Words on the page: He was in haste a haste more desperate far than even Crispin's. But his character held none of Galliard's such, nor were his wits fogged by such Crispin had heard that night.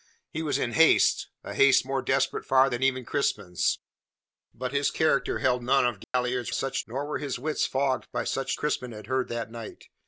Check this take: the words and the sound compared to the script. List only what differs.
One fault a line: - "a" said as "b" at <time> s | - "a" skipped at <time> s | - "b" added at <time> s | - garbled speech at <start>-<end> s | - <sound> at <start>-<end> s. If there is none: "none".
- dropout at 6.0-6.1 s